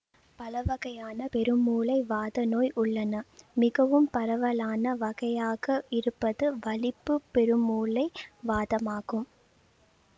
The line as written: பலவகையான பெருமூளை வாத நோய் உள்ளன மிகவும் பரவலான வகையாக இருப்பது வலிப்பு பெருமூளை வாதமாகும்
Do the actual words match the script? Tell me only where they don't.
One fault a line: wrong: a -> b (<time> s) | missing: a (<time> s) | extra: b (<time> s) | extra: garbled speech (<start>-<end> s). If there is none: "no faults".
no faults